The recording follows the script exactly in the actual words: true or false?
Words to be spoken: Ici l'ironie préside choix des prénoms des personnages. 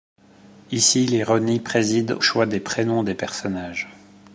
true